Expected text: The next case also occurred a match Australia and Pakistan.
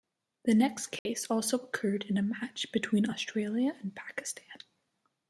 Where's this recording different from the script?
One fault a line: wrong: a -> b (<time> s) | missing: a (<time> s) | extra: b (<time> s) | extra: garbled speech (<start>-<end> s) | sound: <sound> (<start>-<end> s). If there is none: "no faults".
sound: dropout (1.0-1.1 s)
extra: in (2.0 s)
extra: between (2.7 s)